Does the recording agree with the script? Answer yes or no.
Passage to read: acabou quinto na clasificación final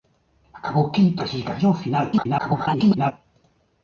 no